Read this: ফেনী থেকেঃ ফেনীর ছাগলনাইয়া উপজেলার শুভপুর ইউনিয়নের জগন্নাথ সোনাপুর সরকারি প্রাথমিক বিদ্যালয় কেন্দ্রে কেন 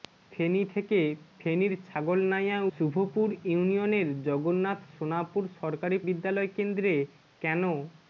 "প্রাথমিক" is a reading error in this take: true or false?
true